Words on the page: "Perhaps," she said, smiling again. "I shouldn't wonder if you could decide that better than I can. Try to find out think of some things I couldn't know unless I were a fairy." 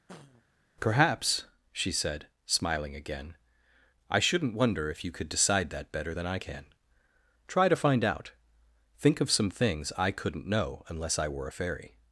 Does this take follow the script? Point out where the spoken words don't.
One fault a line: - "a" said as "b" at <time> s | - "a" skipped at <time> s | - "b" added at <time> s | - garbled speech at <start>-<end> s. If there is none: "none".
none